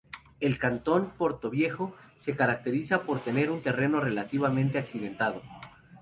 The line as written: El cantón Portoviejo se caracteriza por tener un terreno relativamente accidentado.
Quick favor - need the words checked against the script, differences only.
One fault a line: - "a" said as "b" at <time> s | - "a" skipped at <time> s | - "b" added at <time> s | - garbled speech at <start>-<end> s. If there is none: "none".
none